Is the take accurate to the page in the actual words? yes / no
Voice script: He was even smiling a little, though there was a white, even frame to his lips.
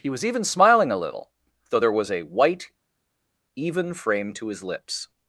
yes